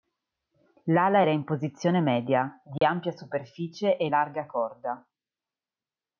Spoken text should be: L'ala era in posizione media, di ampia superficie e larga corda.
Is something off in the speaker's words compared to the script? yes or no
no